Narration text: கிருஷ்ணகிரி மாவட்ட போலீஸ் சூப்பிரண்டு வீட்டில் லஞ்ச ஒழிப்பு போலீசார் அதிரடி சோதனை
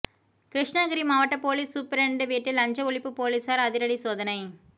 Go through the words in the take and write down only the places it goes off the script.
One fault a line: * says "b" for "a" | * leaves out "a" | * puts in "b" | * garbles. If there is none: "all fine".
all fine